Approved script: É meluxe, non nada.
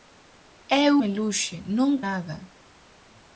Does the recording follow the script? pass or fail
pass